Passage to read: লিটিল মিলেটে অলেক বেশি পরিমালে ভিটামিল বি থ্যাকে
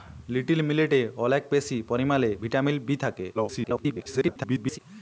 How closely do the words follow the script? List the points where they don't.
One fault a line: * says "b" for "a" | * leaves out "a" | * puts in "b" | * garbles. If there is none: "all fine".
* garbles